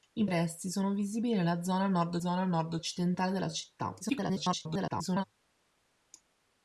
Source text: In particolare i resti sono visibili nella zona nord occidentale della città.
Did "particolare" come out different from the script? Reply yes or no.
yes